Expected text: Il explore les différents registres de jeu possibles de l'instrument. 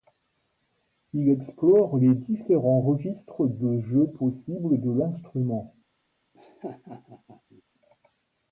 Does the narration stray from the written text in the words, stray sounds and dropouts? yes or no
yes